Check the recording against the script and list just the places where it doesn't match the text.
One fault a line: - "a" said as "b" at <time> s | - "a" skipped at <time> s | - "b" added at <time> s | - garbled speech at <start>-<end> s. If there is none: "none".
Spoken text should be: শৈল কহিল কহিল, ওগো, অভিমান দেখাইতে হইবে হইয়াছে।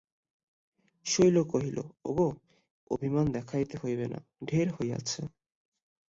- "কহিল" skipped at 1.8 s
- "না ঢের" added at 4.1 s